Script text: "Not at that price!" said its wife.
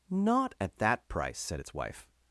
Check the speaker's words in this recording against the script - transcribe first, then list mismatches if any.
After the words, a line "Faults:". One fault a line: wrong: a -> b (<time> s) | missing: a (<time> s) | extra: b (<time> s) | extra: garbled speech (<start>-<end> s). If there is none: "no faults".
"Not at that price!" said its wife.
Faults:
no faults